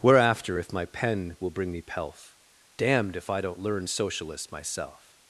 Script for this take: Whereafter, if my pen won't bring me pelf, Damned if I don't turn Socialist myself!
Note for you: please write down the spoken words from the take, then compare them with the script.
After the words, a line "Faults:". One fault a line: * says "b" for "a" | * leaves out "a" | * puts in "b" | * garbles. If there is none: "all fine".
Whereafter, if my pen will bring me pelf, Damned if I don't learn Socialist myself!
Faults:
* says "will" for "won't"
* says "learn" for "turn"